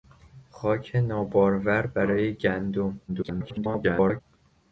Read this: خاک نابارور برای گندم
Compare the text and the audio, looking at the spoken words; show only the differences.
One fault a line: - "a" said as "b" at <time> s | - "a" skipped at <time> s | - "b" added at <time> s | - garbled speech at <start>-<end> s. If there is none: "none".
- garbled speech at 3.1-4.2 s